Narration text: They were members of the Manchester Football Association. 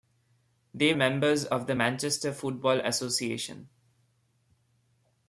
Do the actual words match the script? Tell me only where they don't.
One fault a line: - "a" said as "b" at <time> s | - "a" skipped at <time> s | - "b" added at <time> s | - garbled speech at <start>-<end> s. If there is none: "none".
- "were" skipped at 0.9 s